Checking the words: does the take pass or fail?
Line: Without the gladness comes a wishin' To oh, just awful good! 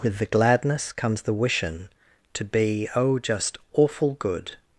fail